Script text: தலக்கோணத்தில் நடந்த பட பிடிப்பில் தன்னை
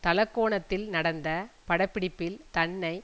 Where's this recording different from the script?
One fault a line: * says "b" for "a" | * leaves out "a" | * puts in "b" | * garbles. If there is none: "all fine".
all fine